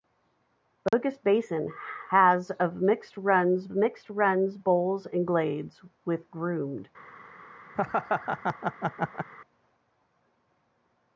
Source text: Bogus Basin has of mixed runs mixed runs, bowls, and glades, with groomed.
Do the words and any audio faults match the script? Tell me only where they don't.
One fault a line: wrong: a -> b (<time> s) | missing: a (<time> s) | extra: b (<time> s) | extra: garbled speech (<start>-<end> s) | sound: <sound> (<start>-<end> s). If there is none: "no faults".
sound: dropout (0.9-0.9 s)
sound: laugh (7.7-9.3 s)